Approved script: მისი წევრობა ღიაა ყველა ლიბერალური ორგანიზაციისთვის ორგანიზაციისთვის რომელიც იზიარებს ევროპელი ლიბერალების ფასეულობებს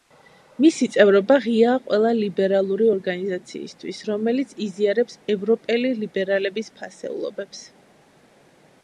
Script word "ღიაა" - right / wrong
right